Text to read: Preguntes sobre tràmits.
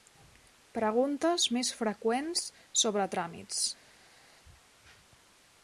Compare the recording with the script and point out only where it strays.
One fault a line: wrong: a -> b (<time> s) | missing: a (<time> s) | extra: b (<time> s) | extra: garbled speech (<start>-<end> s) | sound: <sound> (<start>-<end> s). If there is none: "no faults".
extra: més freqüents (1.6 s)